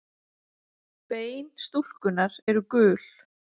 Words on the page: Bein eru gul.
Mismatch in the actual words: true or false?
true